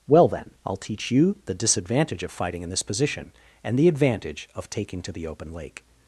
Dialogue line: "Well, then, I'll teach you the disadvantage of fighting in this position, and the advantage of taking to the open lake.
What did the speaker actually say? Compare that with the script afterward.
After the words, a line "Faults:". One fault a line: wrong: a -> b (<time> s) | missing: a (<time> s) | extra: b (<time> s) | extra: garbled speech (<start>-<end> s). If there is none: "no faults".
"Well, then, I'll teach you the disadvantage of fighting in this position, and the advantage of taking to the open lake.
Faults:
no faults